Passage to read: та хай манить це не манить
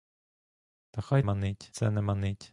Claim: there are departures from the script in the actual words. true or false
false